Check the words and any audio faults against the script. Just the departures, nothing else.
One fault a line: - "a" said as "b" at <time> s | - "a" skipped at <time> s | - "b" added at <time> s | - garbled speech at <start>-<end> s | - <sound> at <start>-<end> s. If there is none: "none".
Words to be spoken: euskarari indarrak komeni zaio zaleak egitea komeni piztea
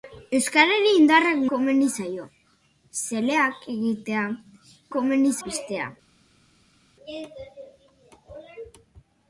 none